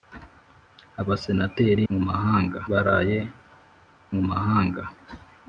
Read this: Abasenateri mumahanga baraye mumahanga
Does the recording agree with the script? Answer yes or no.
yes